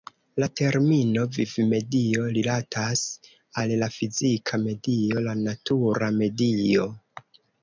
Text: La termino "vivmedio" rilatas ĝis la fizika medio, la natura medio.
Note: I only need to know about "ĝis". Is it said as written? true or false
false